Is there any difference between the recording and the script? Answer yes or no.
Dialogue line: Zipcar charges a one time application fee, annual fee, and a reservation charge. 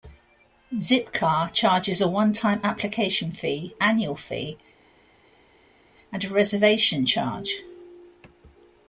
no